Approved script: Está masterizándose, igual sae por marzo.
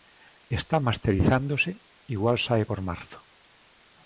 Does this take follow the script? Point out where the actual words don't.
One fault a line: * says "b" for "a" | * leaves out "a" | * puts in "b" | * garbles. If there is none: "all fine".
all fine